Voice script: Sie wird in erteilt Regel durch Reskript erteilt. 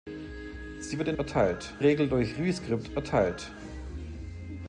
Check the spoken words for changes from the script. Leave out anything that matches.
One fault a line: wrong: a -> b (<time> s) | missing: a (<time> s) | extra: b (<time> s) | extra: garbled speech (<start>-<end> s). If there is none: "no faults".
no faults